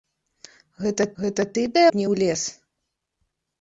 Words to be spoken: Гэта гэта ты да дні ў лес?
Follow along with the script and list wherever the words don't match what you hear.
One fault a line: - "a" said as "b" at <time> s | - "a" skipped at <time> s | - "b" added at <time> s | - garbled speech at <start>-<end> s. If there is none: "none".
none